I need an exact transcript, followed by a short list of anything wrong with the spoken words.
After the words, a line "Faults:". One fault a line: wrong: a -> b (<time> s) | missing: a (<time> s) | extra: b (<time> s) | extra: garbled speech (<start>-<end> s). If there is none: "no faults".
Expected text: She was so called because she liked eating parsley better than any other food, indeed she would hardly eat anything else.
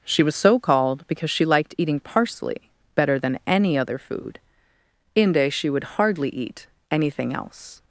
She was so called because she liked eating parsley better than any other food, inde she would hardly eat anything else.
Faults:
wrong: indeed -> inde (5.2 s)